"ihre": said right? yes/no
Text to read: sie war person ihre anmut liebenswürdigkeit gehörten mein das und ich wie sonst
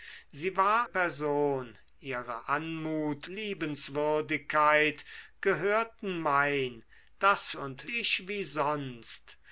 yes